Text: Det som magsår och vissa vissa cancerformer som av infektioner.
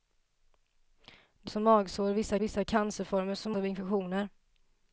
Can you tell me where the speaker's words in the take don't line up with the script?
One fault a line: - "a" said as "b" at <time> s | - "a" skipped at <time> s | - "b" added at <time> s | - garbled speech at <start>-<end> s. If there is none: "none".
none